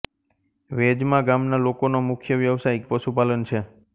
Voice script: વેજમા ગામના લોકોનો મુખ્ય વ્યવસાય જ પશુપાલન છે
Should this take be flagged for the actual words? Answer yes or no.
no